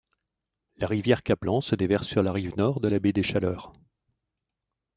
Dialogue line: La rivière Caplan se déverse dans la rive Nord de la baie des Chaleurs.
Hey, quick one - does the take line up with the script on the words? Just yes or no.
no